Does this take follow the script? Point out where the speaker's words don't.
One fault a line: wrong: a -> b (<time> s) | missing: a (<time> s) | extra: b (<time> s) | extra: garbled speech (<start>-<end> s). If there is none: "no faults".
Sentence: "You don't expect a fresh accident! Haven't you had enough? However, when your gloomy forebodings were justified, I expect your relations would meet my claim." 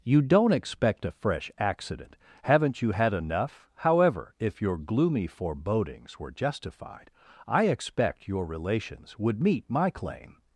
wrong: when -> if (4.4 s)